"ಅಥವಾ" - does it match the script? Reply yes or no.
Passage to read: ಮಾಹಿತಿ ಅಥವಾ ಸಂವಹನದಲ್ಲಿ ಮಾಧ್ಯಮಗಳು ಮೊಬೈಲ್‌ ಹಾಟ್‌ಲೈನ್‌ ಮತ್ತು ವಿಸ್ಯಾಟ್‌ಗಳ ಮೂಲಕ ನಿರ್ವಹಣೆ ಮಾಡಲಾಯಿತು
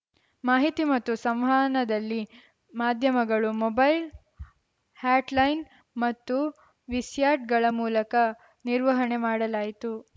no